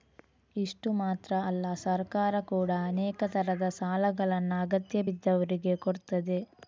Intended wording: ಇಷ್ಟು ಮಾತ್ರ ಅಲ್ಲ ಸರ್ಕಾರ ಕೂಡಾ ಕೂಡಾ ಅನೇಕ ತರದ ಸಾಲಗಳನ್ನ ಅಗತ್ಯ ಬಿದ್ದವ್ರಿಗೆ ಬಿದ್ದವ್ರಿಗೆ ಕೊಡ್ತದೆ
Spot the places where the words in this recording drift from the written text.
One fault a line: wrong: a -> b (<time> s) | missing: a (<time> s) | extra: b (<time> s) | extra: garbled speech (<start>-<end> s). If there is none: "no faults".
missing: ಕೂಡಾ (2.8 s)
missing: ಬಿದ್ದವ್ರಿಗೆ (5.7 s)